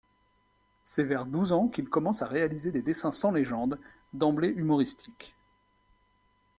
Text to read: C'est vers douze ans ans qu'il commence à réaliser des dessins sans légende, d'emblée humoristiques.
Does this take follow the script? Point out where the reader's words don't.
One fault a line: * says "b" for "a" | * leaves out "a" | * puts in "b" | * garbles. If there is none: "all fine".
* leaves out "ans"